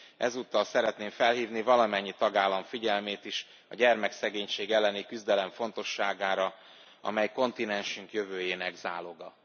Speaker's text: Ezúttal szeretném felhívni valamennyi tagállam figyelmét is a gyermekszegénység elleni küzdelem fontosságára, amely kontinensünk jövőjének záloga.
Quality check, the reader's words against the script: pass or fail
pass